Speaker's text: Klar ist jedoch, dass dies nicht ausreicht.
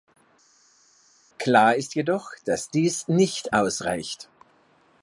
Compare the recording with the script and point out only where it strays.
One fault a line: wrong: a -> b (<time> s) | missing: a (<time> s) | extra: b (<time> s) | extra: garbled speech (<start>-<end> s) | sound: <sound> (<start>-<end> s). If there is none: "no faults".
no faults